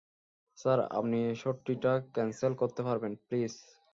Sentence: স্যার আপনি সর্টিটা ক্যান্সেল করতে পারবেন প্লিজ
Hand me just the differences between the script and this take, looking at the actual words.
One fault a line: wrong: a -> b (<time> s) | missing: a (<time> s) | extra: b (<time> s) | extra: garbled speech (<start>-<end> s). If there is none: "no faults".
no faults